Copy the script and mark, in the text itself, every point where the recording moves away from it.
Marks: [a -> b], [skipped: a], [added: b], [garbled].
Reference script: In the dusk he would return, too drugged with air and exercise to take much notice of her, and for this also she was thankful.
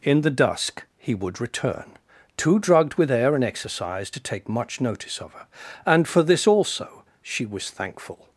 In the dusk he would return, too drugged with air and exercise to take much notice of her, and for this also she was thankful.